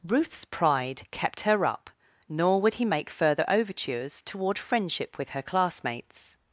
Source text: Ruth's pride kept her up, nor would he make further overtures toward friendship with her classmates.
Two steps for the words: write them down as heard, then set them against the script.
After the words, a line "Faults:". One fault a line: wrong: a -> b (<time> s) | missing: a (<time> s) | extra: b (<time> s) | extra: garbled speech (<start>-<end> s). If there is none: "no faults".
Ruth's pride kept her up, nor would he make further overtures toward friendship with her classmates.
Faults:
no faults